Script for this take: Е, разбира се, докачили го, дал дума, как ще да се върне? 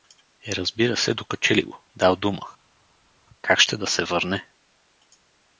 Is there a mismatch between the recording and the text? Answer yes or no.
no